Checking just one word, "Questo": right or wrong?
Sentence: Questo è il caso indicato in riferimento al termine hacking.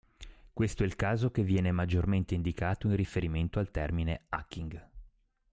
right